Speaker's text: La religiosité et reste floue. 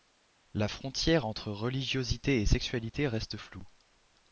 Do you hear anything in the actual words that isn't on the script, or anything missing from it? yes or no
yes